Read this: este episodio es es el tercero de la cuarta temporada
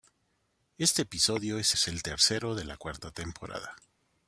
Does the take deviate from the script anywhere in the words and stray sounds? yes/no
no